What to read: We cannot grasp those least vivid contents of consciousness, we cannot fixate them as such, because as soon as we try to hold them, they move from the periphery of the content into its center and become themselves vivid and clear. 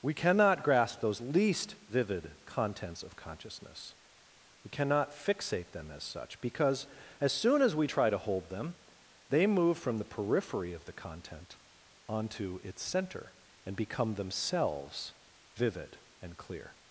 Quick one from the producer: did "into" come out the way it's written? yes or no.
no